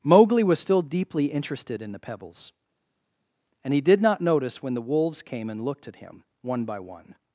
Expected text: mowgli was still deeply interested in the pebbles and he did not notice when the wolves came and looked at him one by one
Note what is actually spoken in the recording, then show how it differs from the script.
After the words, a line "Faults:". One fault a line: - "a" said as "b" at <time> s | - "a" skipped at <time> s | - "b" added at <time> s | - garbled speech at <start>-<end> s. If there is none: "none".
mowgli was still deeply interested in the pebbles and he did not notice when the wolves came and looked at him one by one
Faults:
none